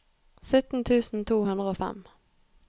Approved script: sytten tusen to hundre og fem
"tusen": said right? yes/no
yes